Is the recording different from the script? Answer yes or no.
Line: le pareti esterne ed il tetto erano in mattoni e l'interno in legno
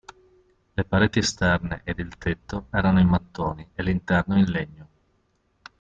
no